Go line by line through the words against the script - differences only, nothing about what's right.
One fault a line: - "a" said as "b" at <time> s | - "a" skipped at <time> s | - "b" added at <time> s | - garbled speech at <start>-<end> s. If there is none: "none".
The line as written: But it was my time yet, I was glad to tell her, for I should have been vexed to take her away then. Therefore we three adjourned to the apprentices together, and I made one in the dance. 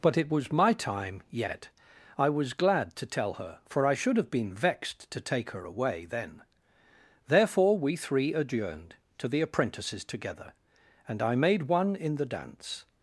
none